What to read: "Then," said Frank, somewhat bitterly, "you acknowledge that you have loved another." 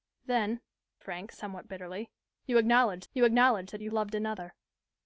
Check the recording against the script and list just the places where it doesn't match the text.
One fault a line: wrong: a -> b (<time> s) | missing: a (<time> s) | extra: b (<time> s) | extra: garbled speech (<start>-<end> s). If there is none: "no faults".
missing: said (0.6 s)
extra: you acknowledge (3.1 s)
missing: have (3.9 s)